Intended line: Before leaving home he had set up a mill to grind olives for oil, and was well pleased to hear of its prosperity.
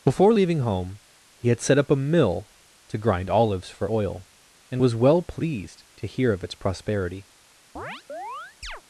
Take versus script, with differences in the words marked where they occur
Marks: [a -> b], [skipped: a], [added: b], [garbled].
Before leaving home he had set up a mill to grind olives for oil, and was well pleased to hear of its prosperity.